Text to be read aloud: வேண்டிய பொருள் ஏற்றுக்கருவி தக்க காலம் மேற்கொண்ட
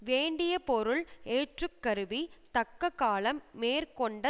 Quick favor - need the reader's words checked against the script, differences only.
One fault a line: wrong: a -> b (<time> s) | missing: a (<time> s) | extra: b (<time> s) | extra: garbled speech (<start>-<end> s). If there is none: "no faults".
no faults